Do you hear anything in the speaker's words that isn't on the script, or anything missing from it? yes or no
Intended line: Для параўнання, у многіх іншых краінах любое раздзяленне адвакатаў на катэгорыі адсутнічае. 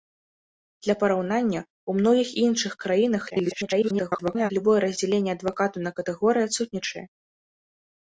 yes